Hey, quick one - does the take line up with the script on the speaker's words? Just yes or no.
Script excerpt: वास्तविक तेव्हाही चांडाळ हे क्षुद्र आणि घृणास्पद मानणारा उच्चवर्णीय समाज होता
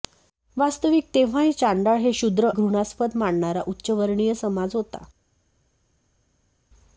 no